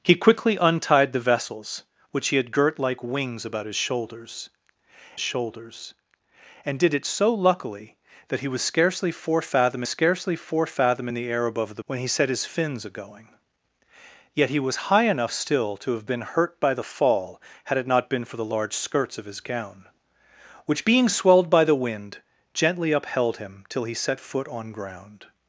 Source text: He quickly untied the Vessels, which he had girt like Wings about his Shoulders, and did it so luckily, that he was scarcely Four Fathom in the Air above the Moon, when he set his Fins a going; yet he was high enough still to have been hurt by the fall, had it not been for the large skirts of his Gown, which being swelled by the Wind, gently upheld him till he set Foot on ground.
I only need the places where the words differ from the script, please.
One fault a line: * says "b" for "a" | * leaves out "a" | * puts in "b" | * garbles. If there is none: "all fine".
* puts in "Shoulders"
* puts in "scarcely Four Fathom"
* leaves out "Moon"